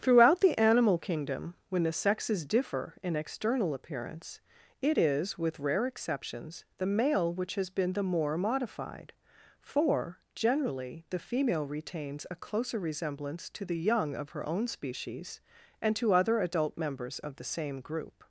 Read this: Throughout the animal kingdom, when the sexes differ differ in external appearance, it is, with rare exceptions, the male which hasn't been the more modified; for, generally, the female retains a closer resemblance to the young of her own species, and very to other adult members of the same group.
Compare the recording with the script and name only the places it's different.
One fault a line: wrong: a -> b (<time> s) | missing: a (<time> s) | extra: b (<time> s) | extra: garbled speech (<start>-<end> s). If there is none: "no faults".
missing: differ (3.0 s)
wrong: hasn't -> has (7.5 s)
missing: very (15.9 s)